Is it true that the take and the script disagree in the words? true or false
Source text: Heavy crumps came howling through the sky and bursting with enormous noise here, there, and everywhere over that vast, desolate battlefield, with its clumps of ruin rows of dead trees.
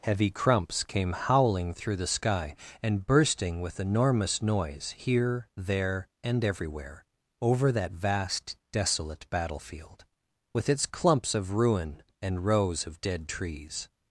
true